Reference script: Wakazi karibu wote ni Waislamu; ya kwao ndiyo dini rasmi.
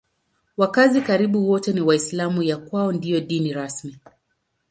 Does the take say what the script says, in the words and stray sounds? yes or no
yes